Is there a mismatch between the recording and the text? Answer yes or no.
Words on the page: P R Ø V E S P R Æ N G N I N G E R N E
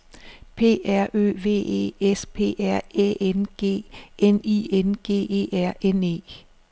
no